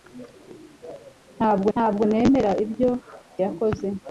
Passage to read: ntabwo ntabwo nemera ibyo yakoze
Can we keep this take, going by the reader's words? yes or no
yes